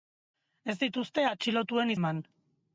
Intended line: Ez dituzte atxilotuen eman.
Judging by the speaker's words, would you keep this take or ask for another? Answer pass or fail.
pass